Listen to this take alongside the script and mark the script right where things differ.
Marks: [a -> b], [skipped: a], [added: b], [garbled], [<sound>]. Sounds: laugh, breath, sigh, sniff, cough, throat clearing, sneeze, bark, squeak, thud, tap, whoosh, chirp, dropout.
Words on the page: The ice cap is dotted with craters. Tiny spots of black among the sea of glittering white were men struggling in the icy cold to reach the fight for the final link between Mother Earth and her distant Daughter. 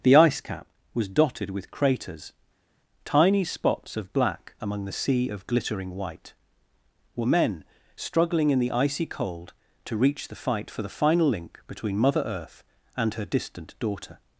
The ice cap [is -> was] dotted with craters. Tiny spots of black among the sea of glittering white were men struggling in the icy cold to reach the fight for the final link between Mother Earth and her distant Daughter.